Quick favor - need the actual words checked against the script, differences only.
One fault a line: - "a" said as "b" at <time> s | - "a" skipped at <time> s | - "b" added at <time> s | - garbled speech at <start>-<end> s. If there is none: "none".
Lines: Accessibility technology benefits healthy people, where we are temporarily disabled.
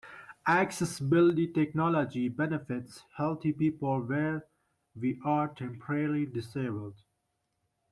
none